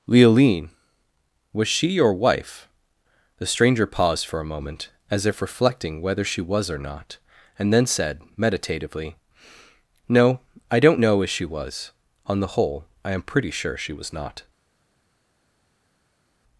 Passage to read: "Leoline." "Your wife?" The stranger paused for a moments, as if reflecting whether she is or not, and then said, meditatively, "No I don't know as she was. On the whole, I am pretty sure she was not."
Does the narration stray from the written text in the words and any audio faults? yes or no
yes